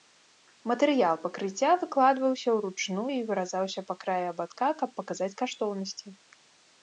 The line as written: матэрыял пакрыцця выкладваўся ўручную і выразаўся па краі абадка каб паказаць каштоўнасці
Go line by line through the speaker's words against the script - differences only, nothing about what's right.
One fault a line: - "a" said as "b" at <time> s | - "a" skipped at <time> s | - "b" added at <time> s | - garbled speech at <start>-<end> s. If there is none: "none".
none